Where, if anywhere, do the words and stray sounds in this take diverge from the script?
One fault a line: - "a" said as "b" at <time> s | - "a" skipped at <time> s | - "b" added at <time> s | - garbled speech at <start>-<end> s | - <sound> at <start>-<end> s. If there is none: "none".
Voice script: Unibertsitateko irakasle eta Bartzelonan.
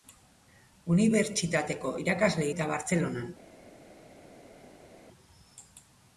none